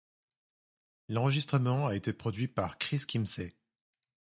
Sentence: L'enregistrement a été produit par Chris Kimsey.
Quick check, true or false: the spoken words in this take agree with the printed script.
true